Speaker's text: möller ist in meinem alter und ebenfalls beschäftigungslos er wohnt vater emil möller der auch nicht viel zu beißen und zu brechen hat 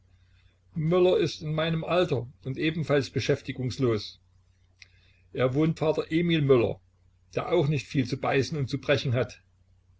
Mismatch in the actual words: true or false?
false